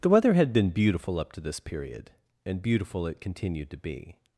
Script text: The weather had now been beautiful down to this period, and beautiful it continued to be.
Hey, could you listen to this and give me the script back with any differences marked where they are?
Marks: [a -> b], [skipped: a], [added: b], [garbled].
The weather had [skipped: now] been beautiful [down -> up] to this period, and beautiful it continued to be.